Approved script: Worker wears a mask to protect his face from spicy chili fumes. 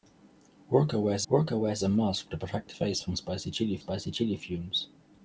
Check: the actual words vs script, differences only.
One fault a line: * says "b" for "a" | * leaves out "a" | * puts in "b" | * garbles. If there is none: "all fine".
* puts in "worker wears"
* leaves out "his"
* puts in "spicy chili"